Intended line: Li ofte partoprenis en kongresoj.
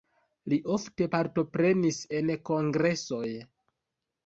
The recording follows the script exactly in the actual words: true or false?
true